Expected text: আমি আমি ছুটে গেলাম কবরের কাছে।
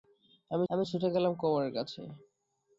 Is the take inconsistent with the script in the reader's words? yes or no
no